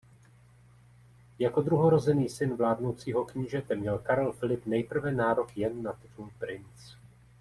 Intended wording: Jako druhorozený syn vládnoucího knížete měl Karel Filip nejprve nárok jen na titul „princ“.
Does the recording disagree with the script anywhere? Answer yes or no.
no